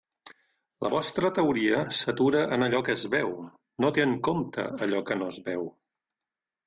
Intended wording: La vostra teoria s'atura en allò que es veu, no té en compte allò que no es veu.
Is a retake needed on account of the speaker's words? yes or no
no